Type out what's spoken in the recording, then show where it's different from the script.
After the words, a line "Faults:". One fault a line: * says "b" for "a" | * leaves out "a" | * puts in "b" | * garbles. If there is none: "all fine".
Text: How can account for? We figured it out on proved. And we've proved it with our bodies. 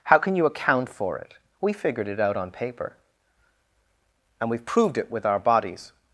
How can you account for it? We figured it out on paper. And we've proved it with our bodies.
Faults:
* puts in "you"
* puts in "it"
* says "paper" for "proved"